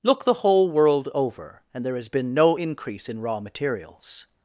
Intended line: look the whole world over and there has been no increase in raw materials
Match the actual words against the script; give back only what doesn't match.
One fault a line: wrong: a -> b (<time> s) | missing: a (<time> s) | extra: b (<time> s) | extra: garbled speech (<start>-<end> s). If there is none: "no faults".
no faults